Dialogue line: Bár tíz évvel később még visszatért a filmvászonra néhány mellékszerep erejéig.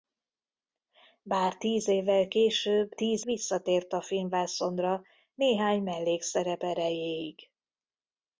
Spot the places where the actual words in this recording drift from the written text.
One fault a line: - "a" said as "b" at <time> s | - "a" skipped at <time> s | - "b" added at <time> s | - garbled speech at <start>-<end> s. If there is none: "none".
- "még" said as "tíz" at 2.9 s